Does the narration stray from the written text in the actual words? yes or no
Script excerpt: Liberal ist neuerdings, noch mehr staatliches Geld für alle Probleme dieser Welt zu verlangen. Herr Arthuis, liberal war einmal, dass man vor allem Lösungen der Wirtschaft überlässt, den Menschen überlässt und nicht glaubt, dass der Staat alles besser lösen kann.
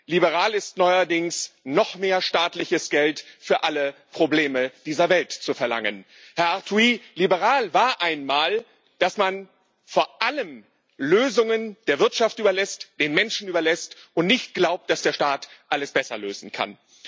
no